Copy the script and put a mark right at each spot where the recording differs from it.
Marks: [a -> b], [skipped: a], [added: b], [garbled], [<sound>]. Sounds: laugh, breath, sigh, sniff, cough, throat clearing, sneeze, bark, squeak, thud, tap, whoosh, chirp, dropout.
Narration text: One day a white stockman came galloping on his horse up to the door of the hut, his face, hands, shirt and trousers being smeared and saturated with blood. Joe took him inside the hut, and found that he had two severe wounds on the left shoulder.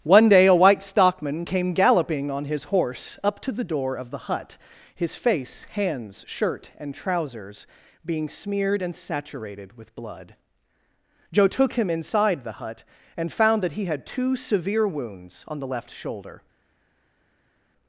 One day a white stockman came galloping on his horse up to the door of the hut, his face, hands, shirt and trousers being smeared and saturated with blood. Joe took him inside the hut, and found that he had two severe wounds on the left shoulder.